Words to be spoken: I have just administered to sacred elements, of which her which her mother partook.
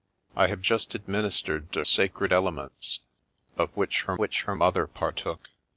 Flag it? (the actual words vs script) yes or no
no